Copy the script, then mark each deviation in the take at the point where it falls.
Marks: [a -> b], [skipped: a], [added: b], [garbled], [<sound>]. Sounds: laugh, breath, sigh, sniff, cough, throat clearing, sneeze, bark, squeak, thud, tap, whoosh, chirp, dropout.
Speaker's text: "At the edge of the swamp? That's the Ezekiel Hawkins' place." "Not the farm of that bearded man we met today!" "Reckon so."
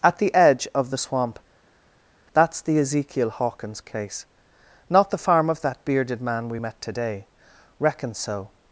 "At the edge of the swamp? That's the Ezekiel Hawkins' [place." -> case] "Not the farm of that bearded man we met today!" "Reckon so."